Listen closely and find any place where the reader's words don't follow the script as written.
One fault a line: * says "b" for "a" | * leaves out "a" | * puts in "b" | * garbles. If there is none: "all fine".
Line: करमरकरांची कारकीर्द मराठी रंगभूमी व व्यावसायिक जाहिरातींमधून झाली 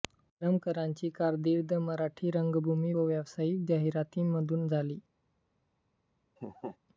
all fine